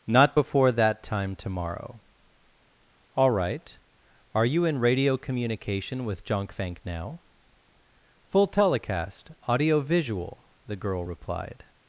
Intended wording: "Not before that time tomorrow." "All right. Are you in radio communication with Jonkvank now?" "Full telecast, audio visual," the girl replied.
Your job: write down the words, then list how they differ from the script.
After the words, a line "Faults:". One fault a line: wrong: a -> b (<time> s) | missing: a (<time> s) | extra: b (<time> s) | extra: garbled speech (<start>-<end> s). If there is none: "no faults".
"Not before that time tomorrow." "All right. Are you in radio communication with Jonkvank now?" "Full telecast, audio visual," the girl replied.
Faults:
no faults